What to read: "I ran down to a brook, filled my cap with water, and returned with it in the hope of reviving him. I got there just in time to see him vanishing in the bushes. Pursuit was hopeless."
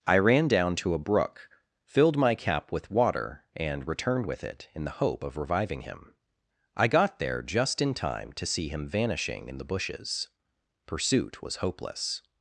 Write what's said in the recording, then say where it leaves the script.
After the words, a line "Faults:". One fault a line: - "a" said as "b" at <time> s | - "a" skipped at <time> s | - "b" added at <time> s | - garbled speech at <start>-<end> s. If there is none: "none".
"I ran down to a brook, filled my cap with water, and returned with it in the hope of reviving him. I got there just in time to see him vanishing in the bushes. Pursuit was hopeless."
Faults:
none